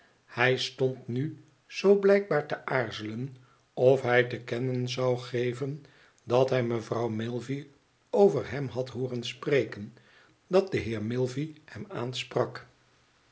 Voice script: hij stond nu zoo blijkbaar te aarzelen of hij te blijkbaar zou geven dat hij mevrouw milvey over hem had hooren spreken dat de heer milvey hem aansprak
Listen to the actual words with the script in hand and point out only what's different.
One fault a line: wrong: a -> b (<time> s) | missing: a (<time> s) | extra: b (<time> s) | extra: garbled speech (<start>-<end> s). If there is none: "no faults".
wrong: blijkbaar -> kennen (4.4 s)